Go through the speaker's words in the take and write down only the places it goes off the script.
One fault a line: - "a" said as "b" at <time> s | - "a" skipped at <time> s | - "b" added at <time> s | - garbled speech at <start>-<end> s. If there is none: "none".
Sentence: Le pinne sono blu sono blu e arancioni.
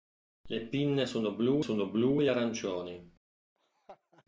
none